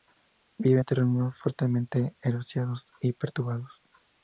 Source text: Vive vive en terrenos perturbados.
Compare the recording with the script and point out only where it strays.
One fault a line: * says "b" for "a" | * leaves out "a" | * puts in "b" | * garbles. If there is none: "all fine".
* leaves out "vive"
* puts in "fuertemente erosionados y"